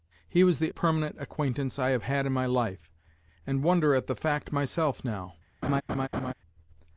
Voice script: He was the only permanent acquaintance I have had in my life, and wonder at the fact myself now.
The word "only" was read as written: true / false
false